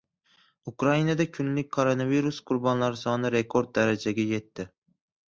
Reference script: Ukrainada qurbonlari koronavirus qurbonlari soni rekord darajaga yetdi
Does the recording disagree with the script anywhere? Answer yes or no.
yes